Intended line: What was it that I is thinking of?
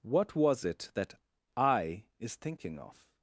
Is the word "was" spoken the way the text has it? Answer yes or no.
yes